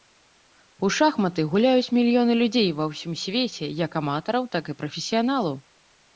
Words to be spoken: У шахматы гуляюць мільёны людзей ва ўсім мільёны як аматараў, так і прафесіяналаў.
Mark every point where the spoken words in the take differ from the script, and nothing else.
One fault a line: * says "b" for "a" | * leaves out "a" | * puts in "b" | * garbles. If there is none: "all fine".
* says "свеце" for "мільёны"